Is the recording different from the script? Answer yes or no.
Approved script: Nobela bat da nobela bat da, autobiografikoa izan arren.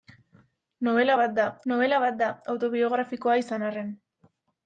no